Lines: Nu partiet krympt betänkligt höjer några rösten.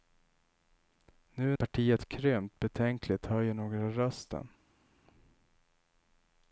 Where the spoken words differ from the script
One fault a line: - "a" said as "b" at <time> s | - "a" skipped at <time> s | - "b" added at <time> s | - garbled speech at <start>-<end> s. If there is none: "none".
none